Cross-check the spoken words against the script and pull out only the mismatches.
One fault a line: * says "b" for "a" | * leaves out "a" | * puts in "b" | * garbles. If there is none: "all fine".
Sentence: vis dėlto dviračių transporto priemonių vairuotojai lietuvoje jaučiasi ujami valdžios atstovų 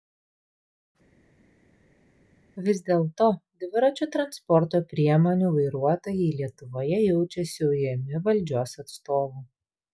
all fine